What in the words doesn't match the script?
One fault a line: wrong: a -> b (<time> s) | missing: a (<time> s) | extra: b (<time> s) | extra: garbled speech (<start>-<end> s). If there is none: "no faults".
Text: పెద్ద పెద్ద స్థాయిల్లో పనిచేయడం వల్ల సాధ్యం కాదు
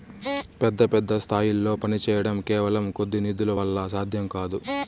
extra: కేవలం కొద్ది నిధుల (2.5 s)